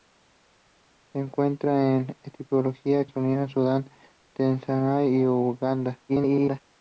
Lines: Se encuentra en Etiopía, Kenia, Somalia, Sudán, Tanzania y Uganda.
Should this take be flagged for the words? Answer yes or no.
yes